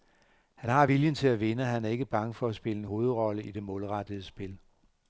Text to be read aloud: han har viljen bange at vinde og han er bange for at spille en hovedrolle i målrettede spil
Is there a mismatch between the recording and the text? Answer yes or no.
yes